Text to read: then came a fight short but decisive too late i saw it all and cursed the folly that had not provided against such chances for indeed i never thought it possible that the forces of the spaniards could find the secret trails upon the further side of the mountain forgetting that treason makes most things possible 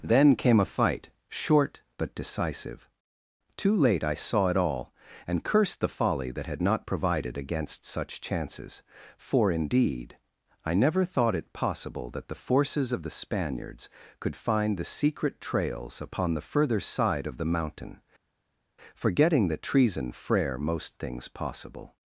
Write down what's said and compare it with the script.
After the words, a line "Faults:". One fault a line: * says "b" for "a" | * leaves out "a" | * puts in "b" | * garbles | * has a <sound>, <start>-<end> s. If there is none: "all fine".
then came a fight short but decisive too late i saw it all and cursed the folly that had not provided against such chances for indeed i never thought it possible that the forces of the spaniards could find the secret trails upon the further side of the mountain forgetting that treason frere most things possible
Faults:
* says "frere" for "makes"